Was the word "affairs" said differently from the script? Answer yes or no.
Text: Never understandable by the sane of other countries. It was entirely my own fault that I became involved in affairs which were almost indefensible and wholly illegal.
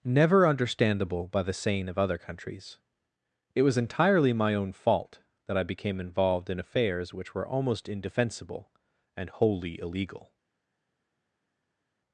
no